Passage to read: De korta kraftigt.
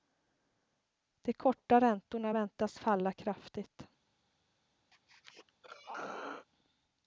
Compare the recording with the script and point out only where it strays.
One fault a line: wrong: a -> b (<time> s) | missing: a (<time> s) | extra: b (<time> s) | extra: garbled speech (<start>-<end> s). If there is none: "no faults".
extra: räntorna väntas falla (1.8 s)